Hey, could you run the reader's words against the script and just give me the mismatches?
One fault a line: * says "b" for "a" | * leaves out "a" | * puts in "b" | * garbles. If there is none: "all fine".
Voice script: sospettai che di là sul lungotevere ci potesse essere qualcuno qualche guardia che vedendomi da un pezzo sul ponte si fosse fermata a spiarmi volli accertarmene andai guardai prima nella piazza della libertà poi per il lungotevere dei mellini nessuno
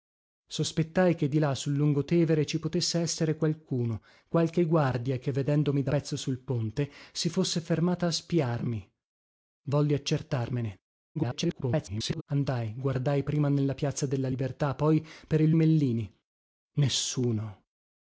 * leaves out "un"
* garbles
* leaves out "lungotevere dei"